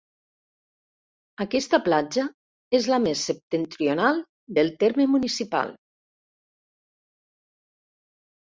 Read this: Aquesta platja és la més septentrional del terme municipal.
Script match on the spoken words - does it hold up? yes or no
yes